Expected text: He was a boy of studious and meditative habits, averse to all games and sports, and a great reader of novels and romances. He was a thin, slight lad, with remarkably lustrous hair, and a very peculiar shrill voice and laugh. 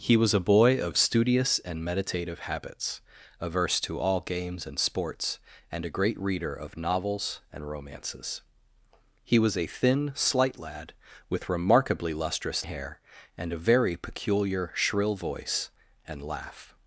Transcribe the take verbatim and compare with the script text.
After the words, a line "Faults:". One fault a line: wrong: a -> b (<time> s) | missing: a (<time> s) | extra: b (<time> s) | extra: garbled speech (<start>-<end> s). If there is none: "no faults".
He was a boy of studious and meditative habits, averse to all games and sports, and a great reader of novels and romances. He was a thin, slight lad, with remarkably lustrous hair, and a very peculiar shrill voice and laugh.
Faults:
no faults